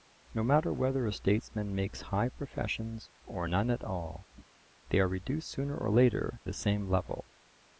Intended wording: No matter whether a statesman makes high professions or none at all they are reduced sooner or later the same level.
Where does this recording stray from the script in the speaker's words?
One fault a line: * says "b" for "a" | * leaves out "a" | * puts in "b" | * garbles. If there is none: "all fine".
all fine